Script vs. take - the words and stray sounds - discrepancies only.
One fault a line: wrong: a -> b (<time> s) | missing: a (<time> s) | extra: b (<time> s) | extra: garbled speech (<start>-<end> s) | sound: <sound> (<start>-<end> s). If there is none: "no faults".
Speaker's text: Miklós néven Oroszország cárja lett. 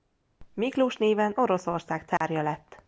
sound: dropout (2.2-2.2 s)